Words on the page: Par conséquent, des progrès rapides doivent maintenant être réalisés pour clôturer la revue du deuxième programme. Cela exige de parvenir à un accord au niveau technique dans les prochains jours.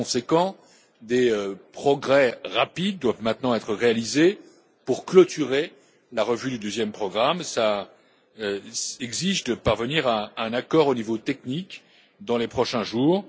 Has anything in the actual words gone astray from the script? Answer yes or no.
no